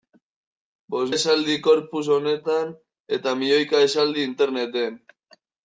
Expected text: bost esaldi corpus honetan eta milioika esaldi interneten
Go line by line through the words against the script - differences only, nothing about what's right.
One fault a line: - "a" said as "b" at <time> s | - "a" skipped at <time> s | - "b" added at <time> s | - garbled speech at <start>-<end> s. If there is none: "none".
none